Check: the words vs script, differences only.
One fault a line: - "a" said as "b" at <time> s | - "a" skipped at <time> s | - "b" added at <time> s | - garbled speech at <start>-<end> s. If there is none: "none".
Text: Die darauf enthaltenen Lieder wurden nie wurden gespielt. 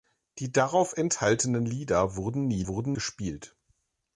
none